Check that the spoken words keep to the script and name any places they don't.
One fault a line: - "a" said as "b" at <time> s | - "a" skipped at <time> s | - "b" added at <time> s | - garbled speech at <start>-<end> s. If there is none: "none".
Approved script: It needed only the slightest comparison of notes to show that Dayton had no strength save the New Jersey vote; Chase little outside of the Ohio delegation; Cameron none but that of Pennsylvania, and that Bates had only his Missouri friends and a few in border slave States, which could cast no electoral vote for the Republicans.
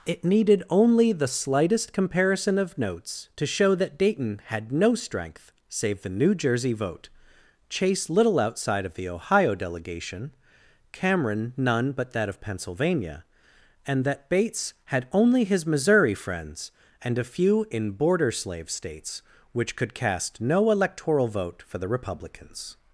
none